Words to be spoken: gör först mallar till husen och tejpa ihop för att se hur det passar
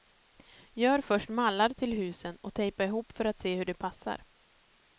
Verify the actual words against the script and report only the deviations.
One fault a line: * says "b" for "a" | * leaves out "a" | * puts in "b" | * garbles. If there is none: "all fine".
all fine